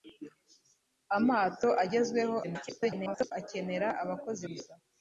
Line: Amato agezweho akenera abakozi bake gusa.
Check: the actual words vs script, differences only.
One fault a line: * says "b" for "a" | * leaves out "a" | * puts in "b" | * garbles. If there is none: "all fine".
* garbles
* leaves out "bake"